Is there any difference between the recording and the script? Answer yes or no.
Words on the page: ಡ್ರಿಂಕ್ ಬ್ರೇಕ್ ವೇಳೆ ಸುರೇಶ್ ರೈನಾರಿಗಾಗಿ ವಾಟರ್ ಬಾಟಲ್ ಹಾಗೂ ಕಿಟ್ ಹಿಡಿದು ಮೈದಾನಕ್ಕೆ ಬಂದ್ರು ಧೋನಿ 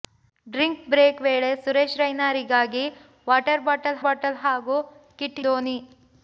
yes